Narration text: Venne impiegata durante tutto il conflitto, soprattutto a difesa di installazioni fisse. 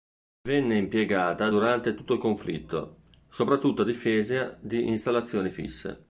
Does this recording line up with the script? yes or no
yes